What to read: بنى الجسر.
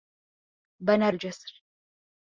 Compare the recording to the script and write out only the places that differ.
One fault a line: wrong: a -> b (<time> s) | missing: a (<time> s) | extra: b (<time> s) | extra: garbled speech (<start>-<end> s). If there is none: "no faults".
no faults